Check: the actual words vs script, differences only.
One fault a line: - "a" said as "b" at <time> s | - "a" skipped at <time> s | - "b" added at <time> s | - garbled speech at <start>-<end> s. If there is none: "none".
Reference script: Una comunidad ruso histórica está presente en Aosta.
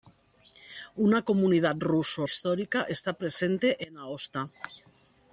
none